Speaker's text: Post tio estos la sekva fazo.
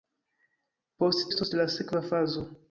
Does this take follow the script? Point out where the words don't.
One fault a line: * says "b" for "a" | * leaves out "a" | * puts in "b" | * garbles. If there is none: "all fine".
* leaves out "tio"